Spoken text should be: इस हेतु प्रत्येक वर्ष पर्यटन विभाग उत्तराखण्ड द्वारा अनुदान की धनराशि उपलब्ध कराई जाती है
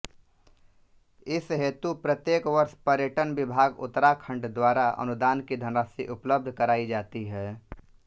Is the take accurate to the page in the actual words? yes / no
yes